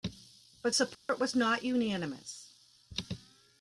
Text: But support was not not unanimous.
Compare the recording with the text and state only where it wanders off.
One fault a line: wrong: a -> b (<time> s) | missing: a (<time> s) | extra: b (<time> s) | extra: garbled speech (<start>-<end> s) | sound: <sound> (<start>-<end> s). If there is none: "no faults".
sound: dropout (0.9-1.1 s)
missing: not (1.6 s)